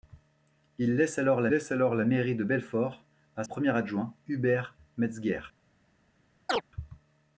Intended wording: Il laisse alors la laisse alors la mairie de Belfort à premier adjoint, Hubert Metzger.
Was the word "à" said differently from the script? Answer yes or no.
no